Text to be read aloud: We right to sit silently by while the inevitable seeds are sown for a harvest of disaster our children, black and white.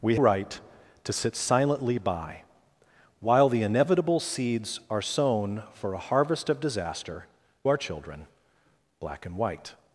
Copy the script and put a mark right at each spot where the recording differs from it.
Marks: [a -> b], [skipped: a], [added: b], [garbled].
We right to sit silently by while the inevitable seeds are sown for a harvest of disaster our children, black and white.